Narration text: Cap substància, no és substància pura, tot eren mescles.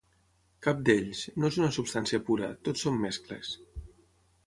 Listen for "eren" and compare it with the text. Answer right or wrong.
wrong